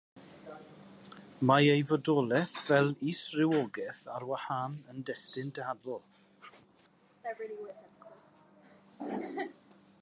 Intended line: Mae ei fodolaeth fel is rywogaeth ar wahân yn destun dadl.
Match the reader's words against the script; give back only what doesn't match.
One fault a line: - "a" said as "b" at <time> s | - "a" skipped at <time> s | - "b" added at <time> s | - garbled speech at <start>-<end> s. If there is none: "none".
none